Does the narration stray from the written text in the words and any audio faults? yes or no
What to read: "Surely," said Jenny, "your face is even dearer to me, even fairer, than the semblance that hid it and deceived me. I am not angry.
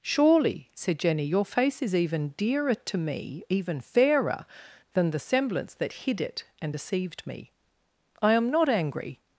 no